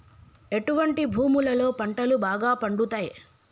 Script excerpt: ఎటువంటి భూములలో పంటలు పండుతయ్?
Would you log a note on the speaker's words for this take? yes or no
yes